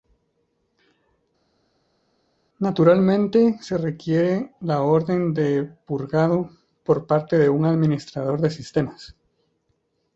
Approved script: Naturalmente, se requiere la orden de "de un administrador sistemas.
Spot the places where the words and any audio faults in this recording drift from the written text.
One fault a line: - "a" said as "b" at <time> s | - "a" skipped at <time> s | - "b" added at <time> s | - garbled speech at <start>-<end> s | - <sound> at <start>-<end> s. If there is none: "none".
- "purgado por parte" added at 5.9 s
- "de" added at 8.4 s